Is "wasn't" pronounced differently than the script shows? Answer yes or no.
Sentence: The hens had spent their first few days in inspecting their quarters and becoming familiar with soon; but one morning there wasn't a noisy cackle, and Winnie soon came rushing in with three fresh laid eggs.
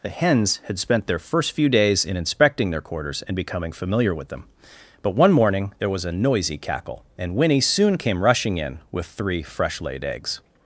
yes